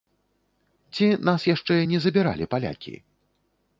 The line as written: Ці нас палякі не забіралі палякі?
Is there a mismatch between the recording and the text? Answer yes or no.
yes